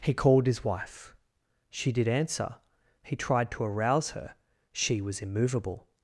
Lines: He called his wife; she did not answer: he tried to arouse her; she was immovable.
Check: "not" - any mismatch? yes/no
yes